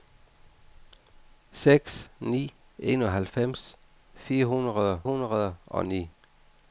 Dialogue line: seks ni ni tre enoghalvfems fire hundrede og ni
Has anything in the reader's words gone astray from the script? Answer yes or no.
yes